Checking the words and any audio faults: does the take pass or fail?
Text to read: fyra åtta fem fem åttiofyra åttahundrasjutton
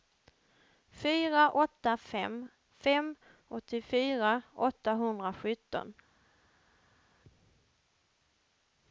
pass